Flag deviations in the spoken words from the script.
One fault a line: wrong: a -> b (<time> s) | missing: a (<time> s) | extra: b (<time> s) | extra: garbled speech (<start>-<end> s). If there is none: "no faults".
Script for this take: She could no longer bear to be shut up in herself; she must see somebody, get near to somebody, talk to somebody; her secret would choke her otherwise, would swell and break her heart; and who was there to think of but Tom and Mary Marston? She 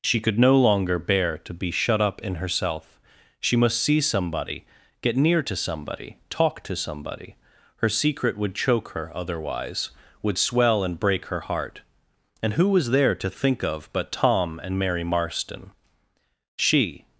no faults